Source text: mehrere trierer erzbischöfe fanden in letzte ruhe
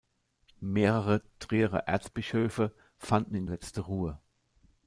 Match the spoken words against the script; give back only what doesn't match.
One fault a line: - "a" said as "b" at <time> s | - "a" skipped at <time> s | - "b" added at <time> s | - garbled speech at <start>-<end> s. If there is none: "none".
none